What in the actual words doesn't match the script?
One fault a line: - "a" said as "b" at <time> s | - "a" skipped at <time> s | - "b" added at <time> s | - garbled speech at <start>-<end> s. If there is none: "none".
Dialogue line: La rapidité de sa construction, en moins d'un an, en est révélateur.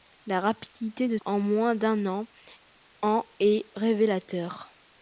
- "sa construction" skipped at 1.2 s